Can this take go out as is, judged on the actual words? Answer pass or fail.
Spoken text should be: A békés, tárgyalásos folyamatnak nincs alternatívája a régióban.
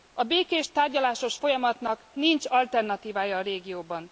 pass